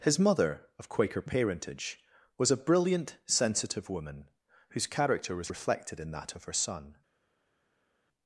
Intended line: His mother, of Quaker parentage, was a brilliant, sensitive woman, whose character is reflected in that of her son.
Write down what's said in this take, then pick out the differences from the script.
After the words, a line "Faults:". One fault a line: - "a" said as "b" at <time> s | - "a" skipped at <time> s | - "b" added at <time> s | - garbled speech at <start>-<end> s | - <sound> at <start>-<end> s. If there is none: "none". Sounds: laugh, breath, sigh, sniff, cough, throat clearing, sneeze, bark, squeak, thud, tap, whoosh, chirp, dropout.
His mother, of Quaker parentage, was a brilliant, sensitive woman, whose character was reflected in that of her son.
Faults:
- "is" said as "was" at 5.3 s